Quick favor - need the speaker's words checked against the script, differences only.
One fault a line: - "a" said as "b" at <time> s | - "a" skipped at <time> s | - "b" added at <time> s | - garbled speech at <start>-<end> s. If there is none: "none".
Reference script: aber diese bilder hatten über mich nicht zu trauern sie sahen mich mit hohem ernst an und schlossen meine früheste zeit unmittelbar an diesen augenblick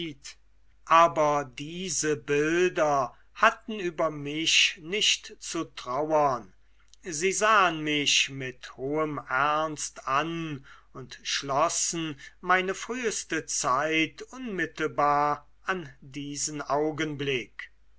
none